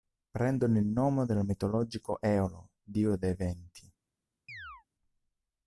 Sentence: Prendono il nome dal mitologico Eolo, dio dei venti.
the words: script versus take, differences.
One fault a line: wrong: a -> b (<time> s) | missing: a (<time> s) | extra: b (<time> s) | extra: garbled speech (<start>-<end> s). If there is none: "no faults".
no faults